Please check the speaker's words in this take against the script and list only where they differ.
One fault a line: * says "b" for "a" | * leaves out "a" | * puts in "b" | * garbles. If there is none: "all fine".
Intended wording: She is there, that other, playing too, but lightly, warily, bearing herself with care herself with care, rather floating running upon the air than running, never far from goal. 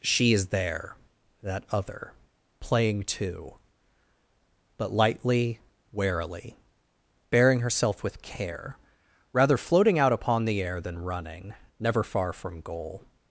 * leaves out "herself with care"
* says "out" for "running"